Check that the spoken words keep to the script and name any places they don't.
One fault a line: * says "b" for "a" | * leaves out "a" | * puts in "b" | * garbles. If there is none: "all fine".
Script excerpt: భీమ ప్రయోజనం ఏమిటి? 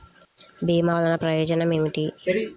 * puts in "వల్లన"